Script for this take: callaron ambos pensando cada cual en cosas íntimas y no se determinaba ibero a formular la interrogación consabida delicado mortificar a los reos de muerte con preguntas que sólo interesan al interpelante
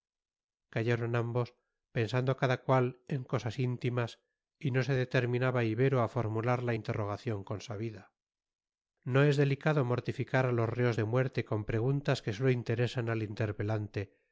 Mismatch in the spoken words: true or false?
true